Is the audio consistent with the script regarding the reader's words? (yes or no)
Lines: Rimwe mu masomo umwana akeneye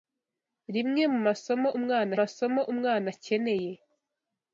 no